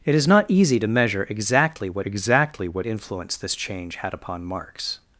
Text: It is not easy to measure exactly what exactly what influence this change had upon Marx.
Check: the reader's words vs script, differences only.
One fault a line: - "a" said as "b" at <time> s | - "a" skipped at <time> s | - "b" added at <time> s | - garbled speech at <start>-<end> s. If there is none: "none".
none